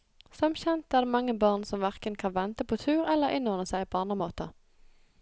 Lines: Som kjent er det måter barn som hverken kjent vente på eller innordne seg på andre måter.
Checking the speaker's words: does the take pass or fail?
fail